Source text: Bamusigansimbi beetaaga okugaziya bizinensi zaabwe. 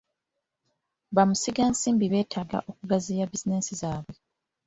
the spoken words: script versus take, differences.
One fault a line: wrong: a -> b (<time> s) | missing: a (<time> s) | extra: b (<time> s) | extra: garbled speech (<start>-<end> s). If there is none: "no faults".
no faults